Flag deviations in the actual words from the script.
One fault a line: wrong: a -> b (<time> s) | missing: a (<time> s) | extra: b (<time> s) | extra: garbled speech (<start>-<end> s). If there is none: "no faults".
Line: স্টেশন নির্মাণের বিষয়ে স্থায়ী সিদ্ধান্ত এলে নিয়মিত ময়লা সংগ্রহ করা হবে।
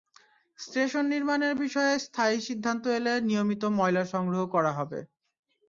no faults